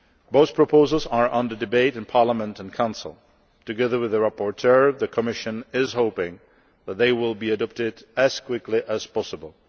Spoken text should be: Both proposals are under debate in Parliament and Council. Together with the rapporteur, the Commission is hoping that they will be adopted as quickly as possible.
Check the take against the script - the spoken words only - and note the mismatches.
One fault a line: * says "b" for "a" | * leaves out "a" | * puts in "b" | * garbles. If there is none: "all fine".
all fine